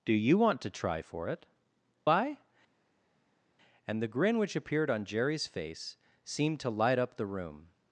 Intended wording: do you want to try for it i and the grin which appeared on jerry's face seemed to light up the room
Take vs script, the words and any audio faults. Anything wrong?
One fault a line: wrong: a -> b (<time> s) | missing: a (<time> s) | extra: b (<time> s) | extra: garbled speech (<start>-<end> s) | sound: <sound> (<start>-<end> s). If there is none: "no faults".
no faults